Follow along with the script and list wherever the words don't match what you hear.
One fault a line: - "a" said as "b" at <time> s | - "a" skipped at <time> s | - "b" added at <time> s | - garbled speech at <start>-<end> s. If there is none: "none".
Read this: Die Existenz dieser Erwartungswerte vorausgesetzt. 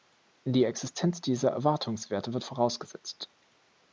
- "wird" added at 2.3 s